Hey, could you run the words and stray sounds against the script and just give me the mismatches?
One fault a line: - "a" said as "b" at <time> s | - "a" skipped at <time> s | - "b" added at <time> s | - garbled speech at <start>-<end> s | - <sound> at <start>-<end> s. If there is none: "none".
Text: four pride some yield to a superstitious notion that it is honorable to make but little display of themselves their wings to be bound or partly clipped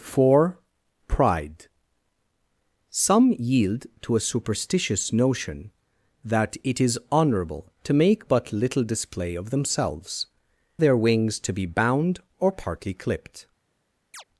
- chirp at 14.1-14.2 s